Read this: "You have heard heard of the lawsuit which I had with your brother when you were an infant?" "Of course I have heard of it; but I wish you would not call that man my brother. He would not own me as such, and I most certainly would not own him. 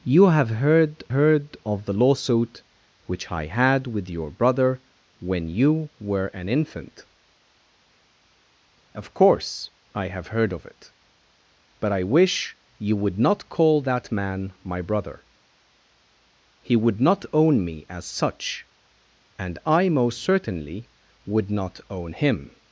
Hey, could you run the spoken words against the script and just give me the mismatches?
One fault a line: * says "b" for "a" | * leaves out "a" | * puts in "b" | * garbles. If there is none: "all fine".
all fine